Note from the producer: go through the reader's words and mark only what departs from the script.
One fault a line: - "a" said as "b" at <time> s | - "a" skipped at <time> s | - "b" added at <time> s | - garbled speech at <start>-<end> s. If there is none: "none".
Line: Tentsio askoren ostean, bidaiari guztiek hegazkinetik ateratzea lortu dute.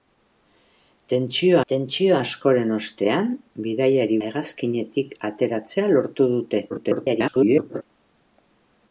- "tentsio" added at 1.7 s
- "guztiek" skipped at 4.2 s
- garbled speech at 6.7-7.8 s